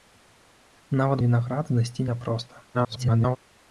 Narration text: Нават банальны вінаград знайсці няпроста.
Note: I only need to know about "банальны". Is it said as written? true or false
false